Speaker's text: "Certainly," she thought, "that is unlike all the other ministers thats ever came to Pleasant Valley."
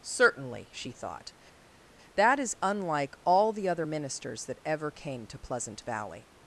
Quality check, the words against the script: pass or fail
fail